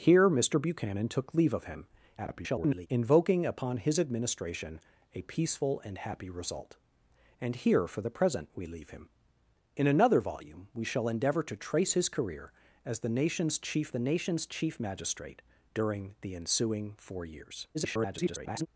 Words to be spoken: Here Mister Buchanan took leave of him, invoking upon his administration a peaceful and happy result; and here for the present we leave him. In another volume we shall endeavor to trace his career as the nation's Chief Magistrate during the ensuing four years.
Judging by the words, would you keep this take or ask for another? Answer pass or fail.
fail